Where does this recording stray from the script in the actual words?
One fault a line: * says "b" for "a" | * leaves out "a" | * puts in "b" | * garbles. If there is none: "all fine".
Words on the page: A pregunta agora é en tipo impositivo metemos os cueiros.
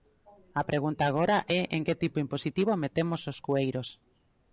* puts in "que"